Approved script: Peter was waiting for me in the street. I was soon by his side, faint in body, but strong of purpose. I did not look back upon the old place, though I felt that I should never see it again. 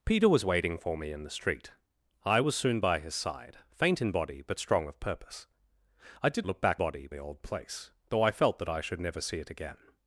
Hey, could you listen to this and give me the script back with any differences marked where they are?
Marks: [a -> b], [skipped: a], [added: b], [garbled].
Peter was waiting for me in the street. I was soon by his side, faint in body, but strong of purpose. I did [skipped: not] look back [upon -> body] the old place, though I felt that I should never see it again.